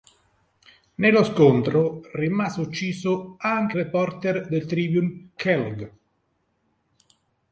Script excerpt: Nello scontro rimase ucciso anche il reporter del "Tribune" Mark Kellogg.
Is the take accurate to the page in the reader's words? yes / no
no